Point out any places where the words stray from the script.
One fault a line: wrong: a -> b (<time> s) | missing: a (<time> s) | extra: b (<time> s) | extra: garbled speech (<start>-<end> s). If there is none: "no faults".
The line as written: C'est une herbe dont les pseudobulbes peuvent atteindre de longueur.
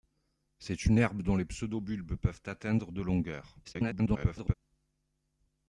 extra: garbled speech (3.6-4.5 s)